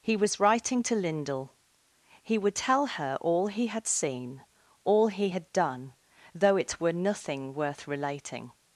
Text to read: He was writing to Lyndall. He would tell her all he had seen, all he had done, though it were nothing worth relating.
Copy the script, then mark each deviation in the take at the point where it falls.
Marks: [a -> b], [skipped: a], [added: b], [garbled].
He was writing to Lyndall. He would tell her all he had seen, all he had done, though it were nothing worth relating.